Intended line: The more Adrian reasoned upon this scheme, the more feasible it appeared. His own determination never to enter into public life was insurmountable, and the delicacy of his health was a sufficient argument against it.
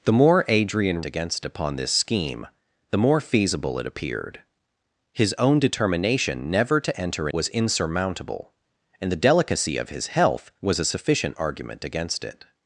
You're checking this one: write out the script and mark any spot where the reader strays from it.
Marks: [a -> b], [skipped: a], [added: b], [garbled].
The more Adrian [reasoned -> against] upon this scheme, the more feasible it appeared. His own determination never to enter [skipped: into public life] was insurmountable, and the delicacy of his health was a sufficient argument against it.